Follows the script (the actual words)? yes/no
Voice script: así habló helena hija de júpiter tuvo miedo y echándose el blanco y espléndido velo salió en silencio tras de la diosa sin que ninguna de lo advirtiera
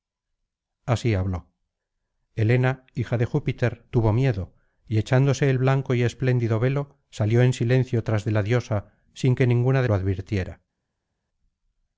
yes